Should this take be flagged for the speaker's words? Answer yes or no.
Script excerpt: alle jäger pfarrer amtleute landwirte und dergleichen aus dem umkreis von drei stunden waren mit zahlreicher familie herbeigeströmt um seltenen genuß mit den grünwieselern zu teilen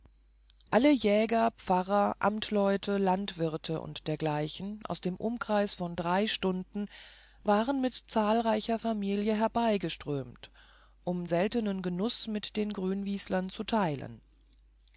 no